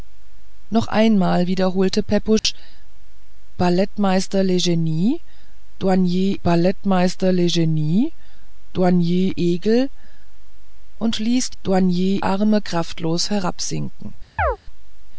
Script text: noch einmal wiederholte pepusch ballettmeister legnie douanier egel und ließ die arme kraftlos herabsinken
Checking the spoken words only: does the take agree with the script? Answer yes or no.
no